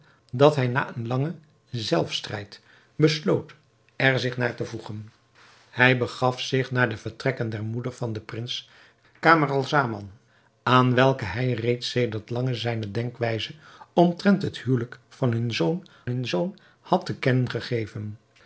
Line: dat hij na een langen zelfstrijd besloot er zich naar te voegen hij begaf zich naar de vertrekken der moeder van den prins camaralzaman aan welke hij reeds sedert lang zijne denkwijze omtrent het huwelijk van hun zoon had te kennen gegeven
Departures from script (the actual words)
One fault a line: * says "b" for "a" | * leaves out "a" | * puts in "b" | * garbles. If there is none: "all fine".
* puts in "hun zoon"